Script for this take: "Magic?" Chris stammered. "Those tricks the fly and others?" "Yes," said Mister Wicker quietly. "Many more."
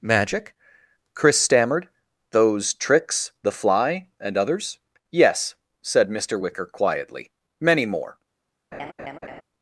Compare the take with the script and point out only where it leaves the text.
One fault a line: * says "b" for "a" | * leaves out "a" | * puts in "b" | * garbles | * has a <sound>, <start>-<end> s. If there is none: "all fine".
* has a laugh, 8.7-9.4 s